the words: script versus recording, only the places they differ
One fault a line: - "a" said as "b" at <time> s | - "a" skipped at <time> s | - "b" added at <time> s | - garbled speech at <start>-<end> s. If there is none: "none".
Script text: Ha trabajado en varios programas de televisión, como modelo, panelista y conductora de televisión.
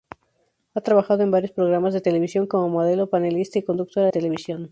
- "de" skipped at 4.1 s